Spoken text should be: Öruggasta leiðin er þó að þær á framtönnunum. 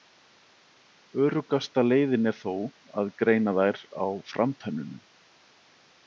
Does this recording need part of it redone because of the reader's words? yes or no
yes